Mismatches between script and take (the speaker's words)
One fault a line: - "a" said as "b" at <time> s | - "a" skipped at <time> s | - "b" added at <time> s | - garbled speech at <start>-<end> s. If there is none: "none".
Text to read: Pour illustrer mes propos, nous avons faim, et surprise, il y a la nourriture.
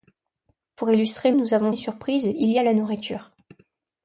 - "mes propos" skipped at 1.3 s
- "faim" skipped at 1.7 s